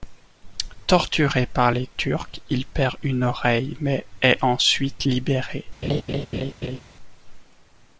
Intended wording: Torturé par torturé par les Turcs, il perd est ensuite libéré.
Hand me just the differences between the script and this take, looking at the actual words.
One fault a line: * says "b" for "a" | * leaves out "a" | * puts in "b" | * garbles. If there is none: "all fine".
* leaves out "torturé par"
* puts in "une oreille mais"